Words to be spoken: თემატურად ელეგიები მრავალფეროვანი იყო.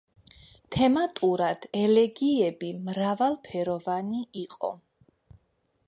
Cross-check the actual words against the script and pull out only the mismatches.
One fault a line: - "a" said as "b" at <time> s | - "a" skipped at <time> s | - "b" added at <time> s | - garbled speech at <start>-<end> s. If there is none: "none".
none